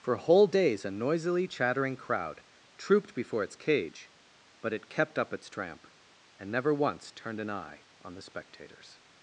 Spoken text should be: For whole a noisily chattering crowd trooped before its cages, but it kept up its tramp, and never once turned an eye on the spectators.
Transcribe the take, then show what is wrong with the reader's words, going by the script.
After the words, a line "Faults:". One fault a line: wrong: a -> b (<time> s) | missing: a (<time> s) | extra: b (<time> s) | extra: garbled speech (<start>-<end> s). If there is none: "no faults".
For whole days a noisily chattering crowd trooped before its cage, but it kept up its tramp, and never once turned an eye on the spectators.
Faults:
extra: days (0.5 s)
wrong: cages -> cage (3.6 s)